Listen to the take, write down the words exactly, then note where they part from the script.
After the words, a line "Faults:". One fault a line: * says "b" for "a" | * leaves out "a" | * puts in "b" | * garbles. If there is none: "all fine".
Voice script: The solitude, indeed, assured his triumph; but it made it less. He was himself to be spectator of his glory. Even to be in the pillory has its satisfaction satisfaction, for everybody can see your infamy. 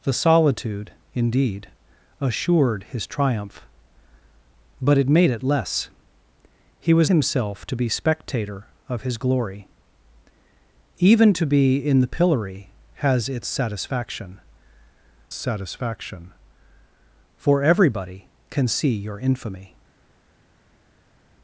The solitude, indeed, assured his triumph; but it made it less. He was himself to be spectator of his glory. Even to be in the pillory has its satisfaction satisfaction, for everybody can see your infamy.
Faults:
all fine